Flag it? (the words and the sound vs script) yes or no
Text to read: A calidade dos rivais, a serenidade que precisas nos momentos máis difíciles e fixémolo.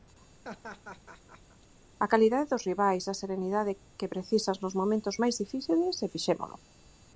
yes